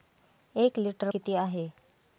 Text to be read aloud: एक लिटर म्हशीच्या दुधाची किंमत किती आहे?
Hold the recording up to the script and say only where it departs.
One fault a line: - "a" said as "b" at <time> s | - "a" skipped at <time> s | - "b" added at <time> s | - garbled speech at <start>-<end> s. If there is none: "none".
- "म्हशीच्या दुधाची किंमत" skipped at 1.1 s